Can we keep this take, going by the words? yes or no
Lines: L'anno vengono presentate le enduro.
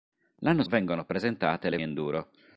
yes